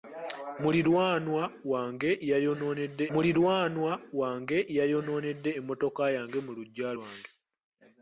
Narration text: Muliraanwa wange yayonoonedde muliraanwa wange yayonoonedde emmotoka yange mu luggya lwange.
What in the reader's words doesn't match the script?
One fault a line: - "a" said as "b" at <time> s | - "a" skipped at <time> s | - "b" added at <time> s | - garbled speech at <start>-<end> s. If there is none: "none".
none